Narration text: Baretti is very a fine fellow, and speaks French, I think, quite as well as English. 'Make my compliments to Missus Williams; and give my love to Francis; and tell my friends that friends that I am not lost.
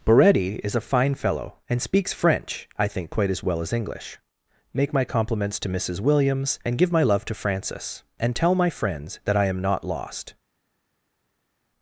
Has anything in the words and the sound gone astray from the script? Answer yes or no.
yes